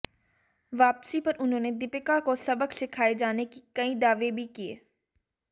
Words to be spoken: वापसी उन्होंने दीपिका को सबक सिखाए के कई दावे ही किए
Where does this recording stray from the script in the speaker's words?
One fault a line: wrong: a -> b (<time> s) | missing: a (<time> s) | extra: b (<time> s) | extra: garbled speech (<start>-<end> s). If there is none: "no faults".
extra: पर (1.2 s)
extra: जाने (3.1 s)
wrong: ही -> भी (4.3 s)